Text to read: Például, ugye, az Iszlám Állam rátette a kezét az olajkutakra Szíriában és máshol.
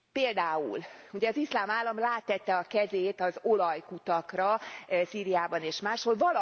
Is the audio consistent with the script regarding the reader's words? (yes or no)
yes